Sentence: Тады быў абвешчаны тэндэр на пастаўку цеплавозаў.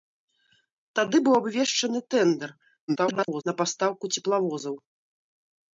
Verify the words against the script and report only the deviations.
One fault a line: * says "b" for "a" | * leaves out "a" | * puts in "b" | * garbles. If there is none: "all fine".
* garbles